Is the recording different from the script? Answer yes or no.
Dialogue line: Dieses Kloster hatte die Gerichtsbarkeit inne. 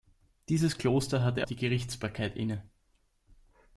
no